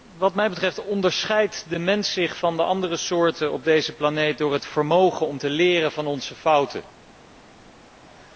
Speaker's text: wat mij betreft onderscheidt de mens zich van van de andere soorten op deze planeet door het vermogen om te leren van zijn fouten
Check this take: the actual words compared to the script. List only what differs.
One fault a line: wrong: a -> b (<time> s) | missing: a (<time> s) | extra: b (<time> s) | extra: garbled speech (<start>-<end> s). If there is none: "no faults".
missing: van (2.6 s)